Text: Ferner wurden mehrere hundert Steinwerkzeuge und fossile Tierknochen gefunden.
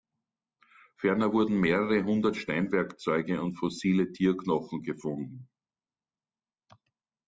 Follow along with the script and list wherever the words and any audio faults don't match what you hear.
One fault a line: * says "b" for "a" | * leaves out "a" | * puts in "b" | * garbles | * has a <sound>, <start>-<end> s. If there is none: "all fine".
all fine